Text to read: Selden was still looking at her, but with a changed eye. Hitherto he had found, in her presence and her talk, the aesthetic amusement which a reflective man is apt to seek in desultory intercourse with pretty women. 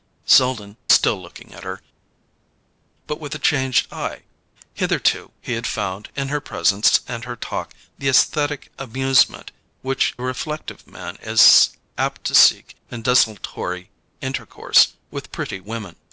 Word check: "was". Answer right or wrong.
wrong